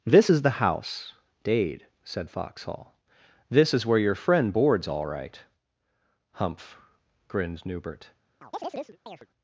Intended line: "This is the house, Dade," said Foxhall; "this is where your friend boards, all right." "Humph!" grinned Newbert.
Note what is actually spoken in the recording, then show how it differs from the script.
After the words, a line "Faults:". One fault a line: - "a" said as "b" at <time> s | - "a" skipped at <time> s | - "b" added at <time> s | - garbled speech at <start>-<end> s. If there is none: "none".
"This is the house, Dade," said Foxhall; "this is where your friend boards, all right." "Humph!" grinned Newbert.
Faults:
none